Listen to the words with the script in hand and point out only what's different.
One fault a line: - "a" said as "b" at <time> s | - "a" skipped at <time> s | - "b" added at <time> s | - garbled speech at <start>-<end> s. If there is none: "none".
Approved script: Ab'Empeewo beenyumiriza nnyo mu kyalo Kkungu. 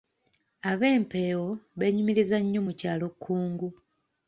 none